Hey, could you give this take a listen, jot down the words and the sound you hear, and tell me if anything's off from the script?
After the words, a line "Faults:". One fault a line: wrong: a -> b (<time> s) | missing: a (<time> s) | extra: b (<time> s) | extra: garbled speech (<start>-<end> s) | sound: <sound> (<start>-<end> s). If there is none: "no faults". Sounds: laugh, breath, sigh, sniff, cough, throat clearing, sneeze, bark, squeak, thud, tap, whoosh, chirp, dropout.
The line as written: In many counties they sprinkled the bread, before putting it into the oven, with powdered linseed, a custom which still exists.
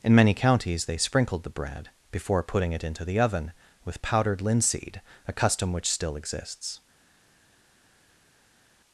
In many counties they sprinkled the bread, before putting it into the oven, with powdered linseed, a custom which still exists.
Faults:
no faults